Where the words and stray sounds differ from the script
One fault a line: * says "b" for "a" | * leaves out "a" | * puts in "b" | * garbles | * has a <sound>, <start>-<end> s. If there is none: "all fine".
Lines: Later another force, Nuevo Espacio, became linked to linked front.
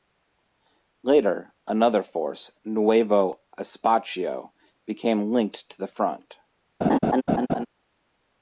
* says "the" for "linked"
* has a laugh, 6.8-7.7 s